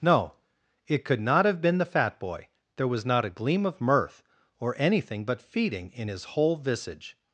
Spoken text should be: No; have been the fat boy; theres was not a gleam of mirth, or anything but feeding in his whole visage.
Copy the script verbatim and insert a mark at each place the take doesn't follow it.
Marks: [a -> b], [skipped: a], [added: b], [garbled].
No; [added: it could not] have been the fat boy; [theres -> there] was not a gleam of mirth, or anything but feeding in his whole visage.